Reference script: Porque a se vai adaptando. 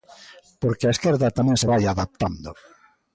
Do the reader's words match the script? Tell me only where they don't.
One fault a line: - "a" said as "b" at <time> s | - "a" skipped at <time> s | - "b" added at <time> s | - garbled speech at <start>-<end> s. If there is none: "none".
- "esquerda tamén" added at 0.9 s